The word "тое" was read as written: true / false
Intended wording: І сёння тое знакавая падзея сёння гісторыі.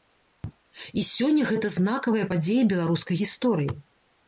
false